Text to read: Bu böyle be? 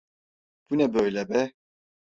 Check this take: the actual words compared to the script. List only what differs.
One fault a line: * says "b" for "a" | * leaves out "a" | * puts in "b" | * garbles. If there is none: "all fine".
* puts in "ne"